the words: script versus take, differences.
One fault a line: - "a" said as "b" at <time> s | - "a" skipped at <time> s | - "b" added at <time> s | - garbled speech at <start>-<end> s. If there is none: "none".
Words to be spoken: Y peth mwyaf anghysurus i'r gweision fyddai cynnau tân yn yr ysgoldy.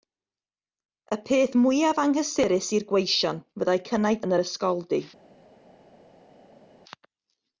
- "tân" skipped at 4.2 s